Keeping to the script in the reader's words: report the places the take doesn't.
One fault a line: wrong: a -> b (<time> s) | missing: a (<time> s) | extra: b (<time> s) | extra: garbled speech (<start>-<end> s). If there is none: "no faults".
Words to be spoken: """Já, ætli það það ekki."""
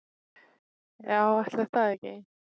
missing: það (1.9 s)